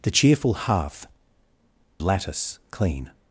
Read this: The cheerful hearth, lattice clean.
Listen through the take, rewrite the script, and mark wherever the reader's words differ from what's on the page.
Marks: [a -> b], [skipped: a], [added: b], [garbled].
The cheerful hearth, lattice clean.